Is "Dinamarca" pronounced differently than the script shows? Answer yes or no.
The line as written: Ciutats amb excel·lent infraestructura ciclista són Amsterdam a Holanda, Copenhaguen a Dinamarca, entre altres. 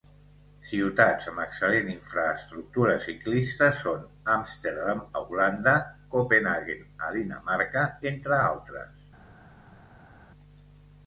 no